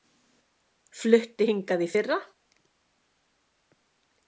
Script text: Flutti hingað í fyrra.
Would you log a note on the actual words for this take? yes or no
no